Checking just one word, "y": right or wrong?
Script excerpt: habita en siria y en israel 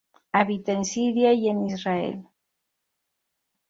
right